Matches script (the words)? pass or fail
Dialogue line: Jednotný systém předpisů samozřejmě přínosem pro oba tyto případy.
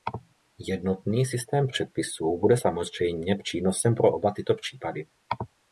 fail